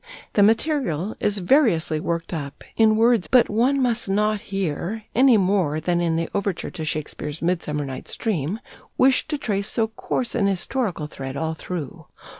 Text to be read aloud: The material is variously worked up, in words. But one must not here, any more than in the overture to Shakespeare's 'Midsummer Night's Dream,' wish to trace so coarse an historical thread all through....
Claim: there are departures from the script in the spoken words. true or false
false